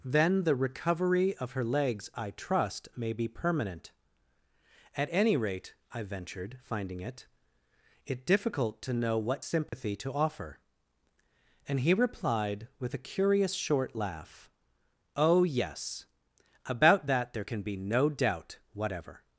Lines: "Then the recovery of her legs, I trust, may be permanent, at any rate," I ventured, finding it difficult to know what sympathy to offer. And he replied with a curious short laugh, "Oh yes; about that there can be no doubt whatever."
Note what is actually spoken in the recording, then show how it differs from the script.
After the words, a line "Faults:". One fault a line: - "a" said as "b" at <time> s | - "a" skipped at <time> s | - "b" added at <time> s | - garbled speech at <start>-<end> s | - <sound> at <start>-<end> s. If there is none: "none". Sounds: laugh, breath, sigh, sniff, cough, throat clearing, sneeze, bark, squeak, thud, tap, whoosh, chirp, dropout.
"Then the recovery of her legs, I trust, may be permanent, at any rate," I ventured, finding it it difficult to know what sympathy to offer. And he replied with a curious short laugh, "Oh yes; about that there can be no doubt whatever."
Faults:
- "it" added at 8.1 s
- dropout at 9.7-9.7 s